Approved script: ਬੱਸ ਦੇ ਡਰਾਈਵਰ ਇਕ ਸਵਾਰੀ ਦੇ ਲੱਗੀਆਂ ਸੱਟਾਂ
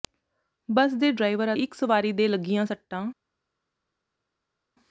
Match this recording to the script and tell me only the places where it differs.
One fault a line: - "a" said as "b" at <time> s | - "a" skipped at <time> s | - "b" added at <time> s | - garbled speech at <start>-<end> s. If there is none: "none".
none